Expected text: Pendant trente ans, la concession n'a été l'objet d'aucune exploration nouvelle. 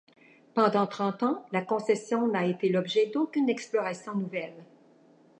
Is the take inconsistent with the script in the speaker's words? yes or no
no